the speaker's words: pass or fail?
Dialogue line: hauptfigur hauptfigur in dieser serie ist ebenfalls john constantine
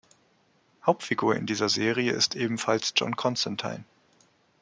fail